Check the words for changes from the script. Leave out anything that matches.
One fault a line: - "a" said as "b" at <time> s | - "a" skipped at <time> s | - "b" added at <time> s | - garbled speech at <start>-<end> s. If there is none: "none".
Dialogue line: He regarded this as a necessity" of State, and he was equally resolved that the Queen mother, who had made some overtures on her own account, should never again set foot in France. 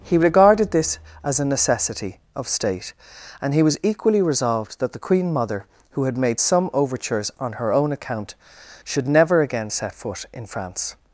none